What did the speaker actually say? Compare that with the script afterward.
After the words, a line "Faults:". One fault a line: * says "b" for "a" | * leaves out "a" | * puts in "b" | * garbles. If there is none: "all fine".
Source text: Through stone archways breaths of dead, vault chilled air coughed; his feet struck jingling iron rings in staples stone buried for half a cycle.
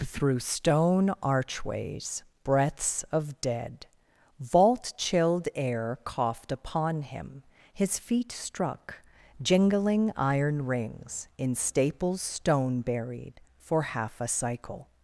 Through stone archways breaths of dead, vault chilled air coughed upon him; his feet struck jingling iron rings in staples stone buried for half a cycle.
Faults:
* puts in "upon him"